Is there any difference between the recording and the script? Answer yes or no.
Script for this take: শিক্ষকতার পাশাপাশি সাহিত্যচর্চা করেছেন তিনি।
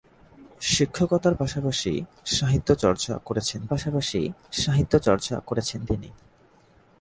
yes